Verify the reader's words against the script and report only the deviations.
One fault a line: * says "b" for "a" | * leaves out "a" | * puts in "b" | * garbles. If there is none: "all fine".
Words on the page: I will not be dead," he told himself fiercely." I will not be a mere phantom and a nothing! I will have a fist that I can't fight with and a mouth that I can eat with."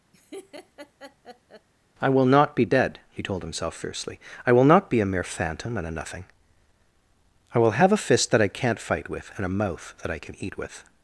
all fine